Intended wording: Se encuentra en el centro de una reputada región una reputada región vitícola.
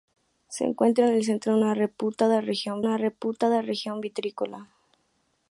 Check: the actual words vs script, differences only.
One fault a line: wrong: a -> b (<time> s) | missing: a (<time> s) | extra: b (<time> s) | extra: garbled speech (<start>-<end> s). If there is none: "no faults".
no faults